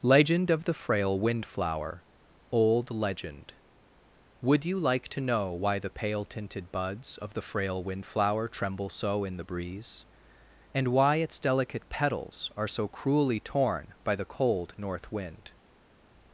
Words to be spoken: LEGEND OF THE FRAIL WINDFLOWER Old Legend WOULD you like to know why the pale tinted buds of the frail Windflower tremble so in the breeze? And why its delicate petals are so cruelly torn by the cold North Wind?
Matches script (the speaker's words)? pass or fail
pass